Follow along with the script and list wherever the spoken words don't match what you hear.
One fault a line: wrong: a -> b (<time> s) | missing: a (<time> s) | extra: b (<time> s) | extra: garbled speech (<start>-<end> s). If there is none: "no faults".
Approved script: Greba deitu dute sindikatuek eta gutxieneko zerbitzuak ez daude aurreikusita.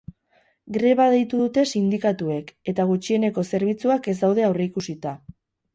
no faults